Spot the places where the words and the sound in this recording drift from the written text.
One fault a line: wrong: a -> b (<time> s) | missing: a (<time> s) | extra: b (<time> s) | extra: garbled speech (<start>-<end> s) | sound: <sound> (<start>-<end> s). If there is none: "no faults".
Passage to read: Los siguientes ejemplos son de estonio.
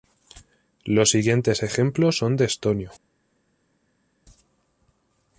no faults